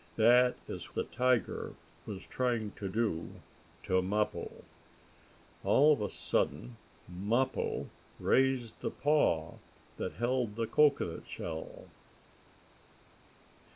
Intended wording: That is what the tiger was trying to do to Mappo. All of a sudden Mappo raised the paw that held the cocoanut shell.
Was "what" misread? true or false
true